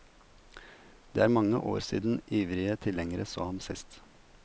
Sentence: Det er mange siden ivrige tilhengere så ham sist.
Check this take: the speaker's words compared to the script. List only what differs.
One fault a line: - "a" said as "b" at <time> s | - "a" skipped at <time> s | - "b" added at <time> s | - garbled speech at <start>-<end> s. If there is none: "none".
- "år" added at 1.6 s